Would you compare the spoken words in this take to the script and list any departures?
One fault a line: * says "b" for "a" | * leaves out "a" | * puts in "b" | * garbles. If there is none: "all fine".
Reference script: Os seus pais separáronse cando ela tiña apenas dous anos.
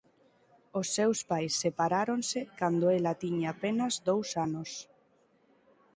all fine